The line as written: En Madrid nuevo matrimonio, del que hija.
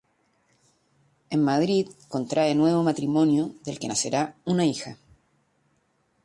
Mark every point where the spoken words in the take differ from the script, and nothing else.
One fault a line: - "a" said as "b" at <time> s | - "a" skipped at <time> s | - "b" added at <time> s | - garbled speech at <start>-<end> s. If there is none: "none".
- "contrae" added at 2.1 s
- "nacerá una" added at 3.9 s